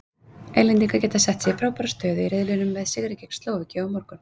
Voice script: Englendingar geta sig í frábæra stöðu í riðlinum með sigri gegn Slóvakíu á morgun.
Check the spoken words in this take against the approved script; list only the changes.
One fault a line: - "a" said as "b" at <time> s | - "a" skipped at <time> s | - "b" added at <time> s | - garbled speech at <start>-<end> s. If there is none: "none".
- "sett" added at 1.2 s